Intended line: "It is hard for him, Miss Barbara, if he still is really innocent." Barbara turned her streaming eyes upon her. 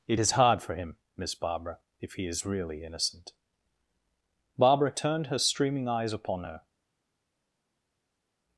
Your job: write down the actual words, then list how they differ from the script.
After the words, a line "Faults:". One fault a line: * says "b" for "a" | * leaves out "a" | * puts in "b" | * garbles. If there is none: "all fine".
"It is hard for him, Miss Barbara, if he is really innocent." Barbara turned her streaming eyes upon her.
Faults:
* leaves out "still"